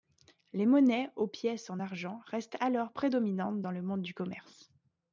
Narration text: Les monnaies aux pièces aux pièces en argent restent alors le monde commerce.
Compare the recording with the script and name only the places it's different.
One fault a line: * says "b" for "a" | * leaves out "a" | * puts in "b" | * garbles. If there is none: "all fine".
* leaves out "aux pièces"
* puts in "prédominantes dans"
* puts in "du"